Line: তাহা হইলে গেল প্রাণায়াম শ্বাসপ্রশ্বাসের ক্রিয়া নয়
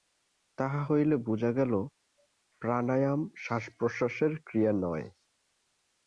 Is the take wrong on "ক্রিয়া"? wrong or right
right